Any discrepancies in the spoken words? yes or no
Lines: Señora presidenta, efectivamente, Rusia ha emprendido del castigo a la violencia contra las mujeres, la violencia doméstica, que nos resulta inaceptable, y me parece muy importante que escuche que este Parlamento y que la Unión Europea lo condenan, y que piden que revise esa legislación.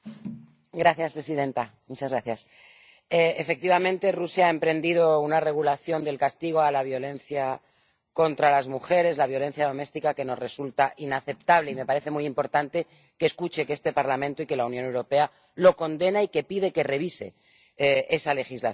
yes